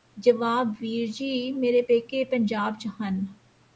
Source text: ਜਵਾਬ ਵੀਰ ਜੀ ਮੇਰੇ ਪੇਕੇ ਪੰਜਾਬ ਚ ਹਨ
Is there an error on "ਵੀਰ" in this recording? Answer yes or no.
no